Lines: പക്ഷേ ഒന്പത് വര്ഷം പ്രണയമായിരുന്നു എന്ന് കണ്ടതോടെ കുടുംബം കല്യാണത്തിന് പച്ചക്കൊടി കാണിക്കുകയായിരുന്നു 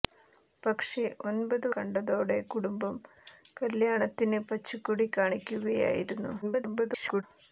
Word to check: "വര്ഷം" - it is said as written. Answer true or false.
false